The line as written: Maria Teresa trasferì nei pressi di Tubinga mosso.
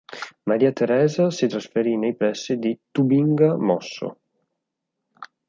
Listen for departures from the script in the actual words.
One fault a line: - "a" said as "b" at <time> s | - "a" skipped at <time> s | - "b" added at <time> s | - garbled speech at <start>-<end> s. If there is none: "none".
- "si" added at 1.3 s